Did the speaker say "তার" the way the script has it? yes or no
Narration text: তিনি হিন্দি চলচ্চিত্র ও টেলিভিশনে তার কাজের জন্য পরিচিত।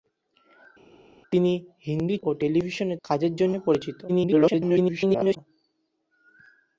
no